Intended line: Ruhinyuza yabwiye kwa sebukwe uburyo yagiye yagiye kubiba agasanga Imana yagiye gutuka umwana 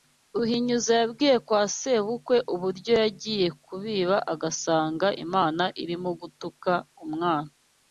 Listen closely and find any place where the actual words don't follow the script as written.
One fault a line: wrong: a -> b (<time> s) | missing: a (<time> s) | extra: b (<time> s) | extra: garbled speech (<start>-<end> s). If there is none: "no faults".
missing: yagiye (3.5 s)
wrong: yagiye -> irimo (5.8 s)